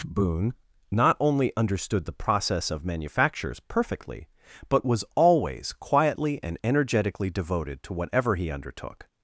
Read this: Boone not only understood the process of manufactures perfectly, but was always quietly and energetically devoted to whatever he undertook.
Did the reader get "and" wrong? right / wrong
right